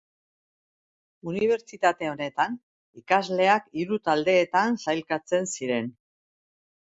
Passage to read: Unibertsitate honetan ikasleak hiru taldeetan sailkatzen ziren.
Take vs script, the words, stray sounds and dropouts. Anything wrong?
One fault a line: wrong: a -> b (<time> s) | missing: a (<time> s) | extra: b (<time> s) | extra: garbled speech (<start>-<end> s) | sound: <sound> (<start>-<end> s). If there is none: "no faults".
no faults